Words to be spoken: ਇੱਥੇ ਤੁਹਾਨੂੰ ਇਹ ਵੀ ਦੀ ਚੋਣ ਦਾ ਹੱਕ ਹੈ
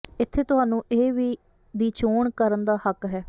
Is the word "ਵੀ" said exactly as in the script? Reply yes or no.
yes